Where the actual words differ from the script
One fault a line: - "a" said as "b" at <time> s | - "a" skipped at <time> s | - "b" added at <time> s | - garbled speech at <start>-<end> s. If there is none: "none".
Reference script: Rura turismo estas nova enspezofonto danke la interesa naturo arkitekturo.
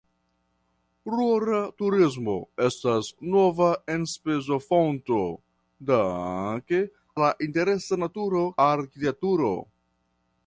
none